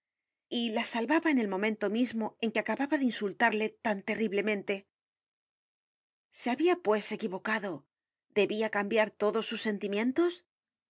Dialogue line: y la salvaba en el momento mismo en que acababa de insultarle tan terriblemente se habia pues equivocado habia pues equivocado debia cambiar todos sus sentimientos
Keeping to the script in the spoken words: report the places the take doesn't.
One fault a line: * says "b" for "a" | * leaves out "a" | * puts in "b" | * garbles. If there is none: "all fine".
* leaves out "habia pues equivocado"